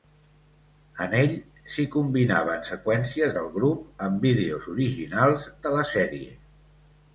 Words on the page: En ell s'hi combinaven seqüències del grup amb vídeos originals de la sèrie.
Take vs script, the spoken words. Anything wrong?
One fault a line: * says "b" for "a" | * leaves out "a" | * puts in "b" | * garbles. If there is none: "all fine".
all fine